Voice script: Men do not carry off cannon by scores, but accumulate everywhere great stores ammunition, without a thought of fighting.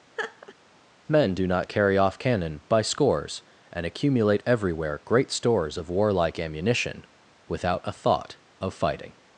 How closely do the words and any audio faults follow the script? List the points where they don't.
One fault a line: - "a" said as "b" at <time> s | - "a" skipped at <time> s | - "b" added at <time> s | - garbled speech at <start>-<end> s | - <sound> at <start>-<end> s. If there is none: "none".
- laugh at 0.2-0.6 s
- "but" said as "and" at 3.7 s
- "of warlike" added at 5.8 s